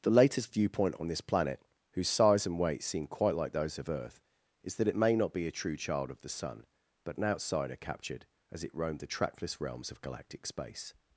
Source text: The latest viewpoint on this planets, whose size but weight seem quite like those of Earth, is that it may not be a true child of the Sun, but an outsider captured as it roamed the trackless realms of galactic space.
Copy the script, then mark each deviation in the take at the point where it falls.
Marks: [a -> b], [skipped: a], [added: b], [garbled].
The latest viewpoint on this [planets, -> planet] whose size [but -> and] weight seem quite like those of Earth, is that it may not be a true child of the Sun, but an outsider captured as it roamed the trackless realms of galactic space.